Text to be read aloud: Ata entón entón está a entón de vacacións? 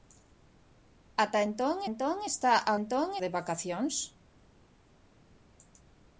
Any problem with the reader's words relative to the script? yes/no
no